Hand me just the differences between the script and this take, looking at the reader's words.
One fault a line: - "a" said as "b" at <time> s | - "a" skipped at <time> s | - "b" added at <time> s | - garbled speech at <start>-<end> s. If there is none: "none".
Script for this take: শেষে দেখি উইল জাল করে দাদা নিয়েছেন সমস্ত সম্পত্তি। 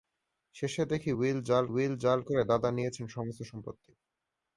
- "উইল জাল" added at 1.7 s